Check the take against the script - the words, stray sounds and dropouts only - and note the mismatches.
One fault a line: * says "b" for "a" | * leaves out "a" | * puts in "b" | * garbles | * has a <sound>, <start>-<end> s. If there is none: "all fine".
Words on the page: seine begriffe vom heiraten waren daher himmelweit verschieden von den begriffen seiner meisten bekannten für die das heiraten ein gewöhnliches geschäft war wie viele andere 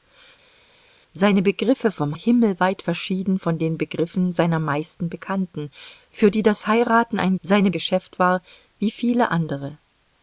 * leaves out "heiraten waren daher"
* says "seine" for "gewöhnliches"